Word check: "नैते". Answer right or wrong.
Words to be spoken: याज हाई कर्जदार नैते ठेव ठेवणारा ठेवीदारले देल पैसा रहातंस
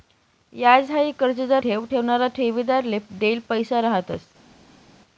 wrong